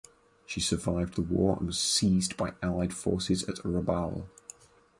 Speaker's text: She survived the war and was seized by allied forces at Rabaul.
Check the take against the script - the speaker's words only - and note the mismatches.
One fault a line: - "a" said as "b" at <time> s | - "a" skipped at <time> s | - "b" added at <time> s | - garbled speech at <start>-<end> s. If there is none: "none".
none